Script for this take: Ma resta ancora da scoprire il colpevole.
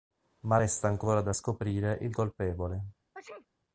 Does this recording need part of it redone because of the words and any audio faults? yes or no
yes